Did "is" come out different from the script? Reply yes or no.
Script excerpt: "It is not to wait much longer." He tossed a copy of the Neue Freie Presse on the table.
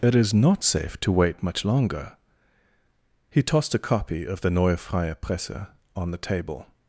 no